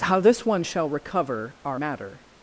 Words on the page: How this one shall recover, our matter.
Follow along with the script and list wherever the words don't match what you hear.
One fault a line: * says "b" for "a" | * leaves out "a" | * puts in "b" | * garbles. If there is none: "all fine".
all fine